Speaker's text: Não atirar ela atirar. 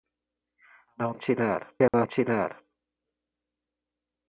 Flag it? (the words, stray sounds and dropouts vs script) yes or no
yes